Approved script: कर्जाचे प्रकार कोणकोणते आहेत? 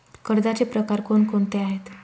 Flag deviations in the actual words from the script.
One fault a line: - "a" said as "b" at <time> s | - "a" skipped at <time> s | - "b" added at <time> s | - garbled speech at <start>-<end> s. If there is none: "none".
none